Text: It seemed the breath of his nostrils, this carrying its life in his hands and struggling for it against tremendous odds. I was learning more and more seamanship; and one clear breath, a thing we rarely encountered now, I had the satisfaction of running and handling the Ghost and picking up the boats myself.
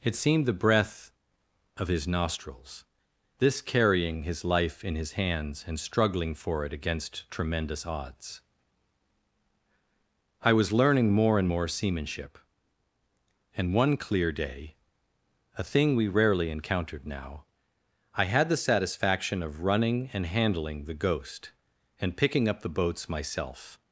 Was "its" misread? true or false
true